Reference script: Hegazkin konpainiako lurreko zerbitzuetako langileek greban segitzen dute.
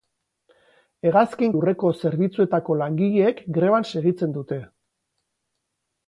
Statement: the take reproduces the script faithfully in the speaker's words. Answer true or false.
false